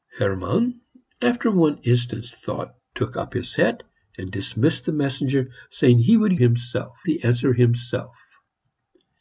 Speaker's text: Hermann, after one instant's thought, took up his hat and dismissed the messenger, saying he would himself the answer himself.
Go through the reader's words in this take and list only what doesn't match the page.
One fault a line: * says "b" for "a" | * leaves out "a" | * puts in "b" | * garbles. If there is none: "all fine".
all fine